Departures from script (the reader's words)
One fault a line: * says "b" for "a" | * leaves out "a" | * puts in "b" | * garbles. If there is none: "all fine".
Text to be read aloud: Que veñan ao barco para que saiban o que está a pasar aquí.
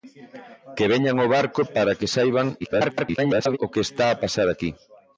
* garbles